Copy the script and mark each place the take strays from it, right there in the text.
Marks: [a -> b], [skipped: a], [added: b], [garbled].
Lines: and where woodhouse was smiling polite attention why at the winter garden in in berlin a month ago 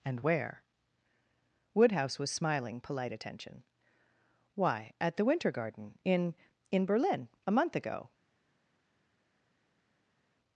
and where woodhouse was smiling polite attention why at the winter garden in in berlin a month ago